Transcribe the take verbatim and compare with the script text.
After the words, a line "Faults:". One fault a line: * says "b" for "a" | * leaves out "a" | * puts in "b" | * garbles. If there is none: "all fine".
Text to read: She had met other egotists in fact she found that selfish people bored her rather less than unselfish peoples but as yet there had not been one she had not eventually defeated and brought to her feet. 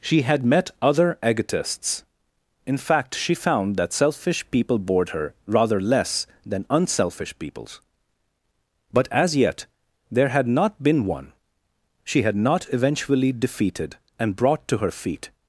She had met other egotists in fact she found that selfish people bored her rather less than unselfish peoples but as yet there had not been one she had not eventually defeated and brought to her feet.
Faults:
all fine